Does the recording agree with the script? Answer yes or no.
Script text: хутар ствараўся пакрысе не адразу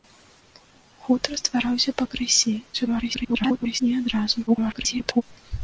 no